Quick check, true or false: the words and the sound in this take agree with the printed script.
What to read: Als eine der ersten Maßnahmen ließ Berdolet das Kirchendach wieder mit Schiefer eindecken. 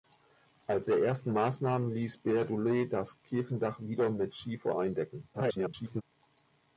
false